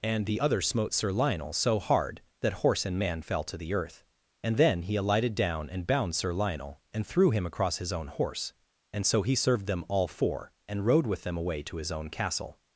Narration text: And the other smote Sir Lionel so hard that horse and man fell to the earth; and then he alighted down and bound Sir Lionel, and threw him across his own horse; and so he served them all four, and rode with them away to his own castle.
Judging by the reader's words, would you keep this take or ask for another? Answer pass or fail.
pass